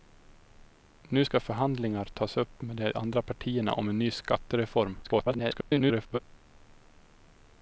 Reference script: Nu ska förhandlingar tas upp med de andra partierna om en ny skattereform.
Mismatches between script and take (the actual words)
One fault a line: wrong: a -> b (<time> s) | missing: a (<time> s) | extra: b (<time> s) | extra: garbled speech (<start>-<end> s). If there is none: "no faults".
extra: garbled speech (5.0-6.2 s)